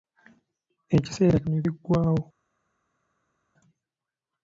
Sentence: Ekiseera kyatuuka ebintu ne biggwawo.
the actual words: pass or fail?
fail